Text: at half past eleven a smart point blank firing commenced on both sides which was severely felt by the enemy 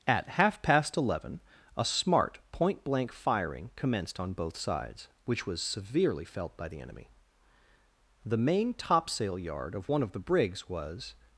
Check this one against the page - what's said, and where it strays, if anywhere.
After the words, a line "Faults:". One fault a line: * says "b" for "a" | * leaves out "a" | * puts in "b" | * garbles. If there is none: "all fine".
at half past eleven a smart point blank firing commenced on both sides which was severely felt by the enemy the main topsail yard of one of the brigs was
Faults:
* puts in "the main topsail yard of one of the brigs was"